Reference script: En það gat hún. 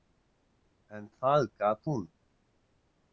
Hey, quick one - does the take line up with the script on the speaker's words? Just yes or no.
yes